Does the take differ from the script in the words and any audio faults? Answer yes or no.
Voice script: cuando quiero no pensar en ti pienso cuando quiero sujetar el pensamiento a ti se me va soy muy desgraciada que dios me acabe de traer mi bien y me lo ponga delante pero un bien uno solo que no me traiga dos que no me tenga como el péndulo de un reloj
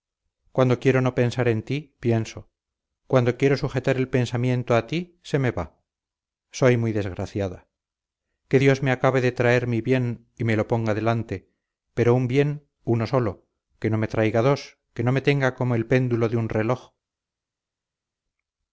no